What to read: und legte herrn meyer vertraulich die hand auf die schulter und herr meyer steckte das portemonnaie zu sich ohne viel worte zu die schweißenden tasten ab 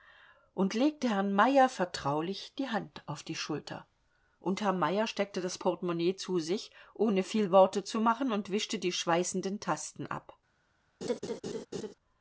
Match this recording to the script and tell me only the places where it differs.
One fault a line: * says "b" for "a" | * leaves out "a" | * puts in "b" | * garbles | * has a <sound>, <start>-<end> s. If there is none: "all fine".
* puts in "machen und wischte"
* has a laugh, 11.0-11.9 s